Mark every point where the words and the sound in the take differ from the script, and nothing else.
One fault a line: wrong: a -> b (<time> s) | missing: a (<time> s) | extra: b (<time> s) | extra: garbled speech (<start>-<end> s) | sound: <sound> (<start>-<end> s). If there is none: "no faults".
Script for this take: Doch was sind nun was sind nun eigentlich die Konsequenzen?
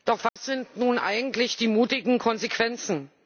sound: dropout (0.3-0.4 s)
missing: was sind nun (1.0 s)
extra: mutigen (1.7 s)